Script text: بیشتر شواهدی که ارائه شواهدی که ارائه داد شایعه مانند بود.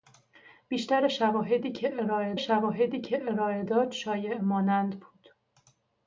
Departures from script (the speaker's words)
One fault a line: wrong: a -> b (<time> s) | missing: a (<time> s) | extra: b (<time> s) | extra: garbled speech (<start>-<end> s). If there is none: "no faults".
no faults